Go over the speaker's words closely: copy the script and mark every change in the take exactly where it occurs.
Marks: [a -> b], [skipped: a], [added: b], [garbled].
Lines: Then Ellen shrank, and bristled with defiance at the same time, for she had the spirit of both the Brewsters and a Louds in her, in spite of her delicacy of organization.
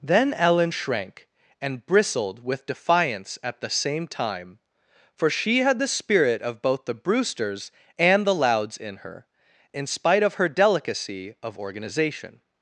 Then Ellen shrank, and bristled with defiance at the same time, for she had the spirit of both the Brewsters and [a -> the] Louds in her, in spite of her delicacy of organization.